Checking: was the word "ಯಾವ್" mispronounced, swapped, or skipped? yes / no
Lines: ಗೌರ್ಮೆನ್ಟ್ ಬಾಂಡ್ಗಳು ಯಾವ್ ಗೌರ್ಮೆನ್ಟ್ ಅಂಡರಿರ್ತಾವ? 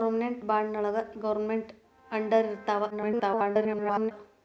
yes